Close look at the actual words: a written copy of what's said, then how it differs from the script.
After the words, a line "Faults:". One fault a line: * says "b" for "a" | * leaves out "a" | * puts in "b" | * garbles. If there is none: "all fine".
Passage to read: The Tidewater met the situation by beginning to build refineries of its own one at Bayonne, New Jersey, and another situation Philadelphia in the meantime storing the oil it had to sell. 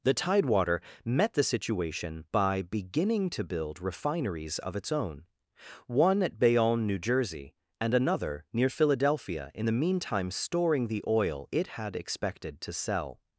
The Tidewater met the situation by beginning to build refineries of its own one at Bayonne, New Jersey, and another near Philadelphia in the meantime storing the oil it had expected to sell.
Faults:
* says "near" for "situation"
* puts in "expected"